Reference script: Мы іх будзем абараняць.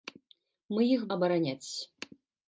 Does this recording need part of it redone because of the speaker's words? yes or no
yes